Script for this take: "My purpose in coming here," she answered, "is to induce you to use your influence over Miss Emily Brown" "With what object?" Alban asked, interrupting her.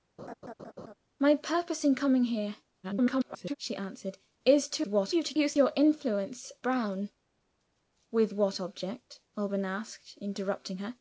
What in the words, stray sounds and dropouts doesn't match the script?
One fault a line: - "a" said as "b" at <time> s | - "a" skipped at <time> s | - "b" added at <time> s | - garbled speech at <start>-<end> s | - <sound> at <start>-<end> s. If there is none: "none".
- laugh at 0.2-0.9 s
- garbled speech at 2.8-3.6 s
- "induce" said as "what" at 4.9 s
- "over Miss Emily" skipped at 6.5 s